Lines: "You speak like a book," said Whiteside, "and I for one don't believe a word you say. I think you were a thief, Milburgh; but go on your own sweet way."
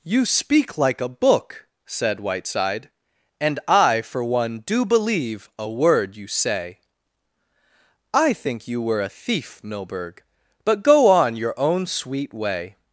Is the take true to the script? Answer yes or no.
no